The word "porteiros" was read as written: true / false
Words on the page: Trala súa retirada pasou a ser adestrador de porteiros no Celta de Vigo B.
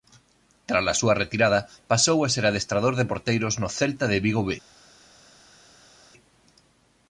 true